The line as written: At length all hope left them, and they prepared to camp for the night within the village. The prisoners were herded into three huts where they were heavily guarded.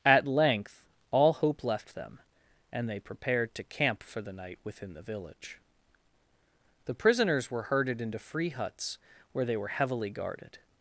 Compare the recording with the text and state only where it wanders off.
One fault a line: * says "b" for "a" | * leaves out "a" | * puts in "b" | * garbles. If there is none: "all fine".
* says "free" for "three"